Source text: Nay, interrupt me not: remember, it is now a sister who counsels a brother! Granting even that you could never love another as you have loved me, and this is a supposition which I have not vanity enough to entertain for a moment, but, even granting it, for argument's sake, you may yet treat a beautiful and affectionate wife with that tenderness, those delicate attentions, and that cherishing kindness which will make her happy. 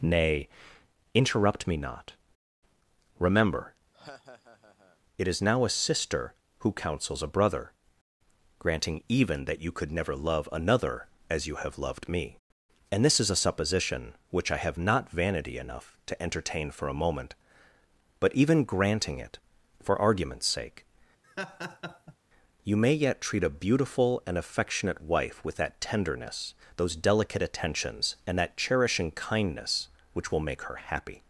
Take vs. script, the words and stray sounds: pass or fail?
fail